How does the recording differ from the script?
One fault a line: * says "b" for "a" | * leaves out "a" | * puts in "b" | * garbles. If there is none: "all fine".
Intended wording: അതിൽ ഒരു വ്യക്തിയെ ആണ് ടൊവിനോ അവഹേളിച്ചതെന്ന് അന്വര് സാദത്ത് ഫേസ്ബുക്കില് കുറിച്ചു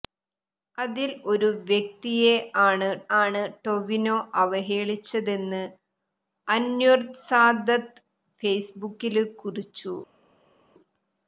* puts in "ആണ്"